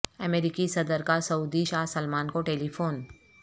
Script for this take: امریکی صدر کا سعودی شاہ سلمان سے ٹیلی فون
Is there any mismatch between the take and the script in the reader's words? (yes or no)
yes